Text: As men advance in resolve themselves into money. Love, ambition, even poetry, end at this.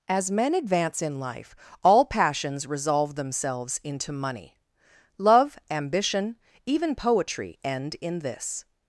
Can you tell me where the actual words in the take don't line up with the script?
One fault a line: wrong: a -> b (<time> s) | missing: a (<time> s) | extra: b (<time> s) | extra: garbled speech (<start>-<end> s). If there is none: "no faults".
extra: life all passions (1.2 s)
wrong: at -> in (8.0 s)